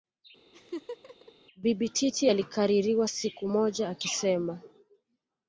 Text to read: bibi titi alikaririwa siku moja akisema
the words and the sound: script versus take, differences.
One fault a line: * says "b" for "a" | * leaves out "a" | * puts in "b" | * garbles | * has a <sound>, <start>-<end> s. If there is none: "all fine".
* has a laugh, 0.5-1.3 s